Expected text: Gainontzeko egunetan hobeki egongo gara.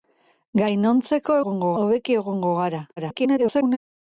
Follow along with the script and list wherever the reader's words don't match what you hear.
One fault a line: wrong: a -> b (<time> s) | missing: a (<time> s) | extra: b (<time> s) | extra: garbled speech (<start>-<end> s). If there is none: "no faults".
wrong: egunetan -> egongo (1.4 s)
extra: garbled speech (3.0-3.8 s)